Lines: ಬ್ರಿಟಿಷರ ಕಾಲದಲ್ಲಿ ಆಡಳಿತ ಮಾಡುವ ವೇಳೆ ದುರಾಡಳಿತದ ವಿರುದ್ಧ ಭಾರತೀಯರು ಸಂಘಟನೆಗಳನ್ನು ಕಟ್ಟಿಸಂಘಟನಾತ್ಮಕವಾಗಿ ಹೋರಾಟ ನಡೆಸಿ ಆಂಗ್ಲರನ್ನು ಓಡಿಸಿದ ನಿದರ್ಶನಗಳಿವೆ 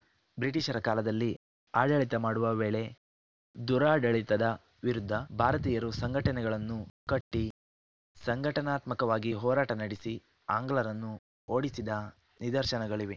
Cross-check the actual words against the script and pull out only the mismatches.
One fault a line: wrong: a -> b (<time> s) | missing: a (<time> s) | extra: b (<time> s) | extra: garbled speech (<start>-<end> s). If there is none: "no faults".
no faults